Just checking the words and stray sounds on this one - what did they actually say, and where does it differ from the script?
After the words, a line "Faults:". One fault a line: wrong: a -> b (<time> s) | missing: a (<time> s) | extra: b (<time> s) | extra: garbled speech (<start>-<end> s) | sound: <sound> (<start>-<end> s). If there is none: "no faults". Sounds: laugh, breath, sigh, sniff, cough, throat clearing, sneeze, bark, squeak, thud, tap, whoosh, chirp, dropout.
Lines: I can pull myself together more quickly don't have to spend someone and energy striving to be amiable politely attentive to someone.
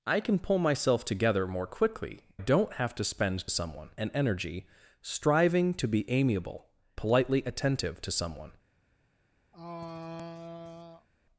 I can pull myself together more quickly don't have to spend someone and energy striving to be amiable politely attentive to someone.
Faults:
sound: throat clearing (9.5-11.1 s)